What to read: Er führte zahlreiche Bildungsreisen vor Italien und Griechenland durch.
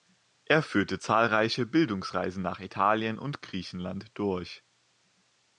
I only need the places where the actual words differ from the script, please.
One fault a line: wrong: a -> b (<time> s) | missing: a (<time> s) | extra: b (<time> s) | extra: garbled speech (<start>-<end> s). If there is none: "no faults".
wrong: vor -> nach (2.4 s)